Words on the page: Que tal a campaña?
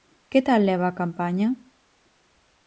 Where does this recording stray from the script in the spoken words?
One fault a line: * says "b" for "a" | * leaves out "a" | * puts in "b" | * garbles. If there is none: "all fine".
* puts in "leva"